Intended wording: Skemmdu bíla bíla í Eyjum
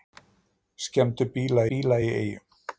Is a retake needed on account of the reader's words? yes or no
no